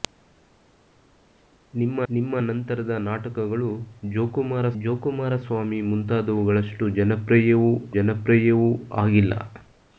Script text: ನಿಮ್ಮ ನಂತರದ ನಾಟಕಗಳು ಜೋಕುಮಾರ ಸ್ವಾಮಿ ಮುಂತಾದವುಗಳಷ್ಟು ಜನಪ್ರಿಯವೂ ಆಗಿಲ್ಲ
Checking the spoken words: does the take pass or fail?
fail